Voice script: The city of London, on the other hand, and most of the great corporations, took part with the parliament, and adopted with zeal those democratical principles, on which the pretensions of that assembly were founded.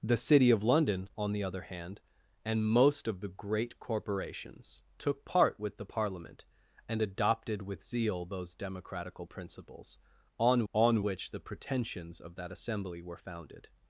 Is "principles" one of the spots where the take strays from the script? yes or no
no